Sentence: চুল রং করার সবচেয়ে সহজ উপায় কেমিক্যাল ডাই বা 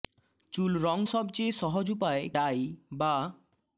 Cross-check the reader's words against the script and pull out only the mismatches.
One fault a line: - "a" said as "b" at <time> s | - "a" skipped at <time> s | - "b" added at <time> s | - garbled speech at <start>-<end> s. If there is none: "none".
- "করার" skipped at 1.0 s
- "কেমিক্যাল" skipped at 2.2 s